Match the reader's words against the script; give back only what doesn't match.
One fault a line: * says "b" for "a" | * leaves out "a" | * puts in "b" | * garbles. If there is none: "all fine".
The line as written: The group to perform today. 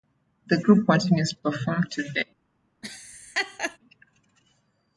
* puts in "continues"